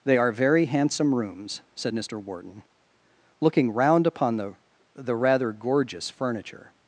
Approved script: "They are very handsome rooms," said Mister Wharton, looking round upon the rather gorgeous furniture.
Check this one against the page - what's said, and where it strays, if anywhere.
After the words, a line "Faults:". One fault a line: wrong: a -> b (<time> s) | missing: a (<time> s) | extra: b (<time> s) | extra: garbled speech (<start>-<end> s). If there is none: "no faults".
"They are very handsome rooms," said Mister Wharton, looking round upon the the rather gorgeous furniture.
Faults:
extra: the (4.9 s)